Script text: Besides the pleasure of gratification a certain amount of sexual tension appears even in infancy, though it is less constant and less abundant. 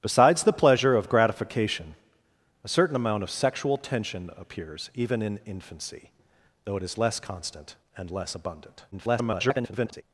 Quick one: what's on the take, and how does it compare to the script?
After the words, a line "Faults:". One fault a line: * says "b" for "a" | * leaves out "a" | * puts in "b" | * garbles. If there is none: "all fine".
Besides the pleasure of gratification a certain amount of sexual tension appears even in infancy, though it is less constant and less abundant. [garbled]
Faults:
* garbles